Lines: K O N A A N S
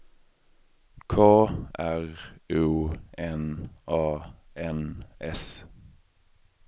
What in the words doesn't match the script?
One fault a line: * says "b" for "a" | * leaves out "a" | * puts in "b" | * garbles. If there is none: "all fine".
* puts in "R"
* leaves out "A"